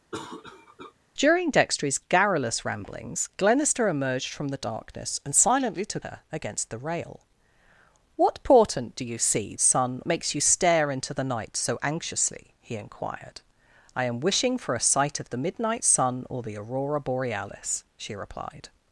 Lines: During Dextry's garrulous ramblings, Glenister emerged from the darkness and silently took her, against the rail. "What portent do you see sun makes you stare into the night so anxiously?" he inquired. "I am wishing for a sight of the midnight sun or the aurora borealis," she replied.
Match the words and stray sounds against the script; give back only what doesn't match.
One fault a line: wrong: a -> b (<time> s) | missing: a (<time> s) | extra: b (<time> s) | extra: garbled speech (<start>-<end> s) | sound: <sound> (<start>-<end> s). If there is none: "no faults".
sound: cough (0.1-0.9 s)